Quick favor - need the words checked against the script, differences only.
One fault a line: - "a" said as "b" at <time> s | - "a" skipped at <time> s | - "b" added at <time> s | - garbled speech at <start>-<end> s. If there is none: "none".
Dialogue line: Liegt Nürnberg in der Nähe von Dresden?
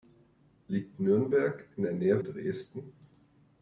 - "von" skipped at 2.2 s